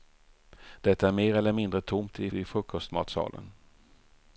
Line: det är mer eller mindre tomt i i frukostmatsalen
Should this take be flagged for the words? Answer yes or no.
no